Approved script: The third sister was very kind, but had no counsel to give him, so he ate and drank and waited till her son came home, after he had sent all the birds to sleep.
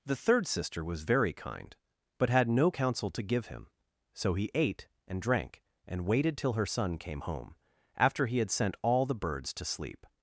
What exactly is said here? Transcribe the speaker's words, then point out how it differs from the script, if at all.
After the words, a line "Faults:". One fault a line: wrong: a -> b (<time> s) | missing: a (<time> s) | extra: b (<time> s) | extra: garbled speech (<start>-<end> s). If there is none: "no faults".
The third sister was very kind, but had no counsel to give him, so he ate and drank and waited till her son came home, after he had sent all the birds to sleep.
Faults:
no faults